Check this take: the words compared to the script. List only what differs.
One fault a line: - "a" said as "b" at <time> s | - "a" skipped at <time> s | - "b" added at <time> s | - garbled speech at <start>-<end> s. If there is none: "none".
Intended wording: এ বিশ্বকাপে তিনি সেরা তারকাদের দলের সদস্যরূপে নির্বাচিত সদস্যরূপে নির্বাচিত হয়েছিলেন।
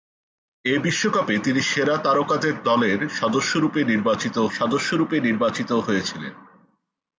none